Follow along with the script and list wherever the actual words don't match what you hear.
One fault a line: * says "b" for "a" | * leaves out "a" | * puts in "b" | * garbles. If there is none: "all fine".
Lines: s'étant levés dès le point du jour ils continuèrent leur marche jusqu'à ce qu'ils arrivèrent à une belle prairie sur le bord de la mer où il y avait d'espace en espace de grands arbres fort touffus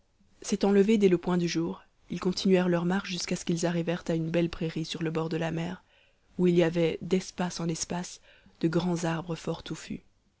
all fine